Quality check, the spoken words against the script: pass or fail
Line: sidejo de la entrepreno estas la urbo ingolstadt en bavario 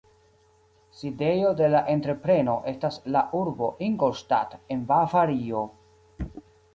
pass